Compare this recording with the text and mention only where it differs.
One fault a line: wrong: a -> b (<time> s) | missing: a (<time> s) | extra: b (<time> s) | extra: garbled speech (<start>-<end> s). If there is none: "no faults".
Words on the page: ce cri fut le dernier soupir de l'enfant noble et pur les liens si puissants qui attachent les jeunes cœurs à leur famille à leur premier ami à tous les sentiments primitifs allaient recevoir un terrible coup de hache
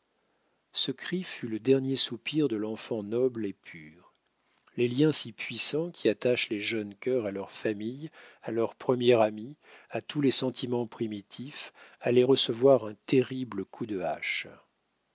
no faults